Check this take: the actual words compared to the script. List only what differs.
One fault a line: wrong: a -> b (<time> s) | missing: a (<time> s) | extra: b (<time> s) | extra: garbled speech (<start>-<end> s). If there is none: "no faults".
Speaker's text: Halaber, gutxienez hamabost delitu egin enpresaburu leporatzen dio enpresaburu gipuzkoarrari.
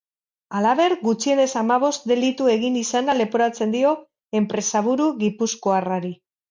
wrong: enpresaburu -> izana (2.8 s)